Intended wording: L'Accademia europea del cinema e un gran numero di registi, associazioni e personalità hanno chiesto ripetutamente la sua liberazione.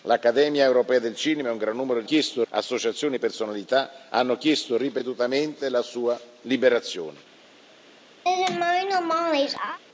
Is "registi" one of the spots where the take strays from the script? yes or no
yes